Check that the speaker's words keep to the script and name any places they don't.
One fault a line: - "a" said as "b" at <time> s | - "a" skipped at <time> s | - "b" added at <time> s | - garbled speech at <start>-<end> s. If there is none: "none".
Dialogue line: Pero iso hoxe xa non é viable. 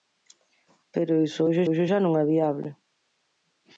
- "hoxe" added at 1.7 s